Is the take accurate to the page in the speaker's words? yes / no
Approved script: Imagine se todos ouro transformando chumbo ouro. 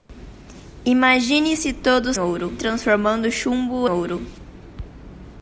yes